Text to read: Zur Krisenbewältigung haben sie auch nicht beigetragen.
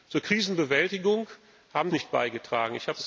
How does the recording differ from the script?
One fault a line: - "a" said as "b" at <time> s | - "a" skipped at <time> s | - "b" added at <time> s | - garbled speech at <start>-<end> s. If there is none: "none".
- "sie auch" skipped at 1.9 s